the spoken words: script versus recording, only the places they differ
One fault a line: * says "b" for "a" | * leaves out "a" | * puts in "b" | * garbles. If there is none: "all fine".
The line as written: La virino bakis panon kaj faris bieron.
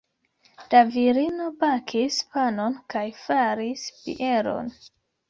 all fine